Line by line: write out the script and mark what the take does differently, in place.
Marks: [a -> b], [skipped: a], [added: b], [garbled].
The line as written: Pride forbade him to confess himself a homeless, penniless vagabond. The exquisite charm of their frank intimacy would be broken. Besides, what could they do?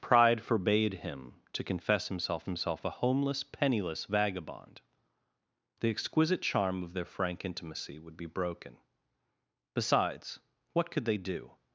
Pride forbade him to confess himself [added: himself] a homeless, penniless vagabond. The exquisite charm of their frank intimacy would be broken. Besides, what could they do?